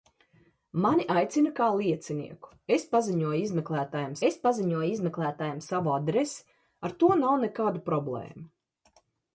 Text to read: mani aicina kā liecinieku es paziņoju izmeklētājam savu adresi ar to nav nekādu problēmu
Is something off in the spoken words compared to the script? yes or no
yes